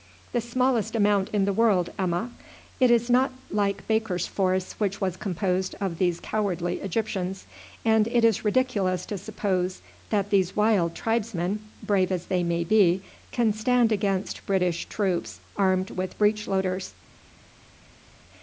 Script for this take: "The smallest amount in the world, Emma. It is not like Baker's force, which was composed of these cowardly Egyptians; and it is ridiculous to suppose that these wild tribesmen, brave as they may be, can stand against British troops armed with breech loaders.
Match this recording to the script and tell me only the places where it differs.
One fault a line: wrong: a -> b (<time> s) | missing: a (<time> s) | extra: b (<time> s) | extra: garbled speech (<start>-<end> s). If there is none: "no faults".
no faults